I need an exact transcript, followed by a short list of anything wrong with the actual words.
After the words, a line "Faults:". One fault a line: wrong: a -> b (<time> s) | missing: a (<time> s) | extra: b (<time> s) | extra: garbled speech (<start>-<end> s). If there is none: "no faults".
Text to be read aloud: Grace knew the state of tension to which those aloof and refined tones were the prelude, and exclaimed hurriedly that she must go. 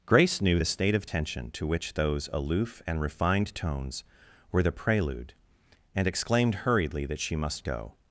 Grace knew the state of tension to which those aloof and refined tones were the prelude, and exclaimed hurriedly that she must go.
Faults:
no faults